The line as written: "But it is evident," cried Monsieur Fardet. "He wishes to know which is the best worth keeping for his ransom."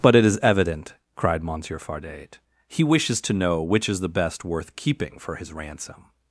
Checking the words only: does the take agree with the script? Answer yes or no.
yes